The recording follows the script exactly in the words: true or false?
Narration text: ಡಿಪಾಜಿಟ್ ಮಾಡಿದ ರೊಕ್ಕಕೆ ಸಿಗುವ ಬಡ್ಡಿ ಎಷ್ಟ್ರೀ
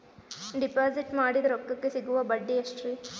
true